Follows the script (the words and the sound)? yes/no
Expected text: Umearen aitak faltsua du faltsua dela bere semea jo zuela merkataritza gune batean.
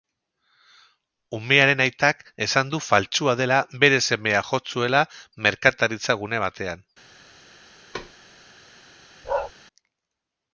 no